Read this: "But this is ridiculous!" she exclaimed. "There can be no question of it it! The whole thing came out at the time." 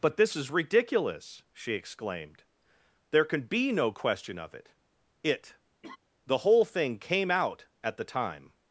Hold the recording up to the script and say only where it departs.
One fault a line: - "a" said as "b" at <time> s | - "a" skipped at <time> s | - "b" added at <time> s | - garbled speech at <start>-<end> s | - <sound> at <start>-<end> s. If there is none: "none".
- laugh at 5.8-6.0 s